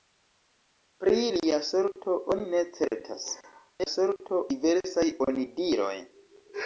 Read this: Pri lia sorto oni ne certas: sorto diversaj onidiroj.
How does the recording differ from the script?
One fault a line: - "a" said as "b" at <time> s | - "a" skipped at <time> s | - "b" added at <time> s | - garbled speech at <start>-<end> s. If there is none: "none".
none